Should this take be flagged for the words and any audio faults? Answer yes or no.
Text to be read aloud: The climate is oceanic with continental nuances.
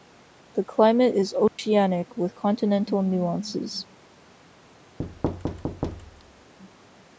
yes